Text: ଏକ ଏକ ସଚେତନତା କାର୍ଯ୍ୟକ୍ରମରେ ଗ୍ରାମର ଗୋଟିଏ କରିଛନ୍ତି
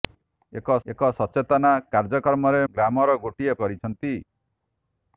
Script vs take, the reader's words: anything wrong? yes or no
no